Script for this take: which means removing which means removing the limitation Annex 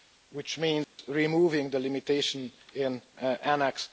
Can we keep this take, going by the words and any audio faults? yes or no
no